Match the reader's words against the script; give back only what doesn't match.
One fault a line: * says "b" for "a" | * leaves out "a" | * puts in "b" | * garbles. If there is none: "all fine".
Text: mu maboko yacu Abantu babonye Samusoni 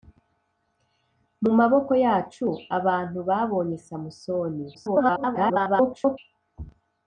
* garbles